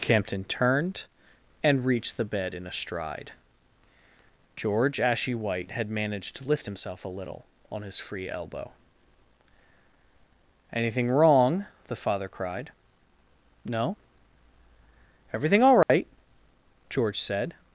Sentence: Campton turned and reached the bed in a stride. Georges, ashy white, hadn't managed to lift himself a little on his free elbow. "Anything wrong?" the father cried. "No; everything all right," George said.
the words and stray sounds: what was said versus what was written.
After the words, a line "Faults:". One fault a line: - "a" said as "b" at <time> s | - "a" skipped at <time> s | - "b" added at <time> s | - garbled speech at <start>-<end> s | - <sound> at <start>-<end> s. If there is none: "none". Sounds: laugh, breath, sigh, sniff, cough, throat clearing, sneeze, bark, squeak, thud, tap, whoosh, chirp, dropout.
Campton turned and reached the bed in a stride. George, ashy white, had managed to lift himself a little on his free elbow. "Anything wrong?" the father cried. "No; everything all right," George said.
Faults:
- "Georges" said as "George" at 4.6 s
- "hadn't" said as "had" at 5.7 s
- dropout at 15.8-15.9 s